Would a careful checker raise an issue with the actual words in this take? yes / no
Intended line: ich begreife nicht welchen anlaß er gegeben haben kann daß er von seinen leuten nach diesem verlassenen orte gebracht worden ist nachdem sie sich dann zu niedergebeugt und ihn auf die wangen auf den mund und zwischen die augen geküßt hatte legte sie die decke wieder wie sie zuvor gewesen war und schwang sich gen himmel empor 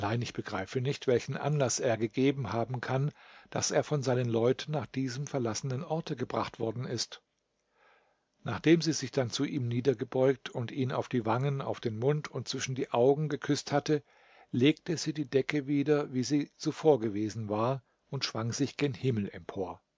yes